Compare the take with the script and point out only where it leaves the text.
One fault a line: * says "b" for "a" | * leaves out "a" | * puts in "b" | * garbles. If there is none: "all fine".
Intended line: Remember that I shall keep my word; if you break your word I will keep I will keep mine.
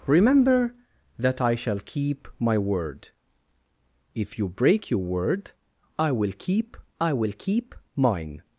all fine